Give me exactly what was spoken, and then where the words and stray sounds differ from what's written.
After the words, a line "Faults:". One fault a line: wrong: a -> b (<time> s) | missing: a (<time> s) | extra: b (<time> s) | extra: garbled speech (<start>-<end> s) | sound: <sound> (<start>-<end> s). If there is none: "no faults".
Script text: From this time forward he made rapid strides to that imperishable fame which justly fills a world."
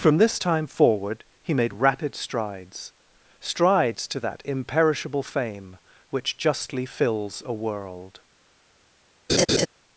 From this time forward he made rapid strides strides to that imperishable fame which justly fills a world."
Faults:
extra: strides (3.4 s)
sound: laugh (9.3-9.7 s)